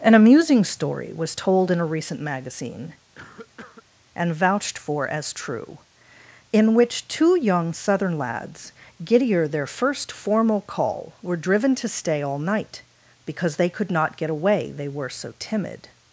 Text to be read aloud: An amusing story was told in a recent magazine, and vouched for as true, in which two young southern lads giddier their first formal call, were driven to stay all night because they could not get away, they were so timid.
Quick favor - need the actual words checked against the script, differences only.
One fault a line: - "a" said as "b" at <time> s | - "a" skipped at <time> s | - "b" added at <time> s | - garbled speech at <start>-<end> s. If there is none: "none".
none